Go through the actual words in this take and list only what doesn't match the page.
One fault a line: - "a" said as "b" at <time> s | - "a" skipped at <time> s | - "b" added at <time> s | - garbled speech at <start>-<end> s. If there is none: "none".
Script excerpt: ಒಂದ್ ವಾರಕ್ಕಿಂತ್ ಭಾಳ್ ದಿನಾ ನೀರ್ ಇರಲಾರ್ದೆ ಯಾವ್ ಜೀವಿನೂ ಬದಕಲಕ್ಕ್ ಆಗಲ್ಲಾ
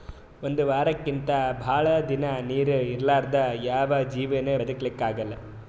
none